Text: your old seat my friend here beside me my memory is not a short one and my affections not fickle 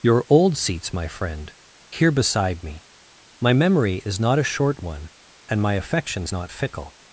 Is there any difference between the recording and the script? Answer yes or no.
yes